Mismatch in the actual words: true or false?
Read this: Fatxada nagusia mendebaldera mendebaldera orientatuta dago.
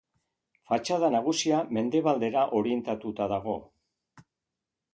true